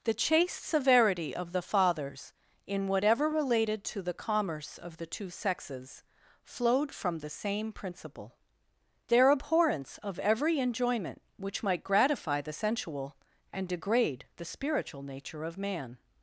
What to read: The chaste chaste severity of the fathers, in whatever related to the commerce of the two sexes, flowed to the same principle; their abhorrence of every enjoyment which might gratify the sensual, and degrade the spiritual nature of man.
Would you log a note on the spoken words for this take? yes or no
yes